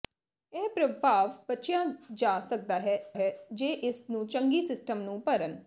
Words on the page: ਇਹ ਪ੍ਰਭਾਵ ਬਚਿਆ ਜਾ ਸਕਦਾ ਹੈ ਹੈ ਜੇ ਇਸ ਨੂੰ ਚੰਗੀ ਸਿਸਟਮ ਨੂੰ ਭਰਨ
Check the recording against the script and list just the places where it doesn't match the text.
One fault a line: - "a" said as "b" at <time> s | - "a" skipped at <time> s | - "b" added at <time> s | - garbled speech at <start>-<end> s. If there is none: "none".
none